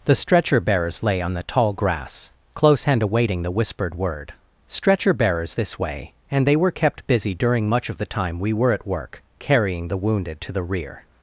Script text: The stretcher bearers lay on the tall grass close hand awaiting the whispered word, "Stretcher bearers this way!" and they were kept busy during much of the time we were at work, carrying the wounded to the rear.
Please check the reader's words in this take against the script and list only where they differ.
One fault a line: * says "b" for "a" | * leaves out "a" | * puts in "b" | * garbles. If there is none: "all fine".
all fine